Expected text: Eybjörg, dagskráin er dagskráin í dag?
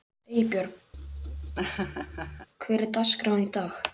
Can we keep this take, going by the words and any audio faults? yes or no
no